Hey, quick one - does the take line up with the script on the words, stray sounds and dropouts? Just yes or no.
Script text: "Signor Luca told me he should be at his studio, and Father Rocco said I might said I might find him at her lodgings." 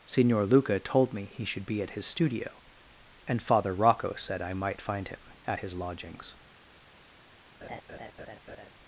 no